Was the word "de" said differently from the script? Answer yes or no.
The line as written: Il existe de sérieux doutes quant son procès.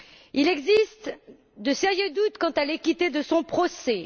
no